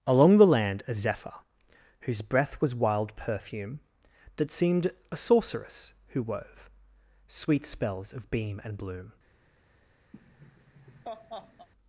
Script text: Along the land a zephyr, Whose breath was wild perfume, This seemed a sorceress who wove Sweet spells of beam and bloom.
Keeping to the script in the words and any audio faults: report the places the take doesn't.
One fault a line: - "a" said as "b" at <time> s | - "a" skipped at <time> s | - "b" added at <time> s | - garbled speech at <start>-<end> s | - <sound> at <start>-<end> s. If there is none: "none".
- "This" said as "That" at 4.4 s
- laugh at 10.1-11.7 s